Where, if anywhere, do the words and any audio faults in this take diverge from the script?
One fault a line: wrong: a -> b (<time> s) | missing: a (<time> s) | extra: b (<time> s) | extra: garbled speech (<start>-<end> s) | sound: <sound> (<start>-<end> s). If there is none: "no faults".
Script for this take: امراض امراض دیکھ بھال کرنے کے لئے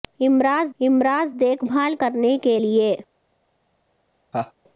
sound: laugh (4.3-4.5 s)